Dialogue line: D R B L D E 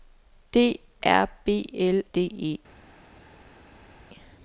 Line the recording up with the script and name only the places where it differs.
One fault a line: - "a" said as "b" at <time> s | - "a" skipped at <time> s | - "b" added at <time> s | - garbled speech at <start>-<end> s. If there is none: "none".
none